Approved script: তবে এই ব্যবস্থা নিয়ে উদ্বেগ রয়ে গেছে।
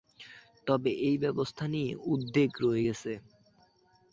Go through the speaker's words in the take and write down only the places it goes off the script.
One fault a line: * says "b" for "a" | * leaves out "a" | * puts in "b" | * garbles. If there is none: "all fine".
all fine